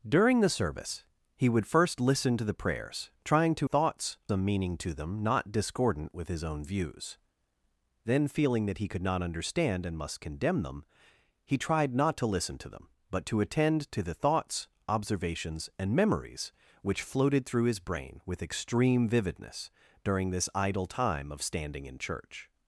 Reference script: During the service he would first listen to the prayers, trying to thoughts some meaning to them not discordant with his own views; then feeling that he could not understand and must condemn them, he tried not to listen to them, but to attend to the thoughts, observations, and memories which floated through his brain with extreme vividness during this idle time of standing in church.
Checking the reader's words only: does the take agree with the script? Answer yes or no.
yes